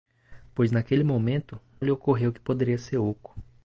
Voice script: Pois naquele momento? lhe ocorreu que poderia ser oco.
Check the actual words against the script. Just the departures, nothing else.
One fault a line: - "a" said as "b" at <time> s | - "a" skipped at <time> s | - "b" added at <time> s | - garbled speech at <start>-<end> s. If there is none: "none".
none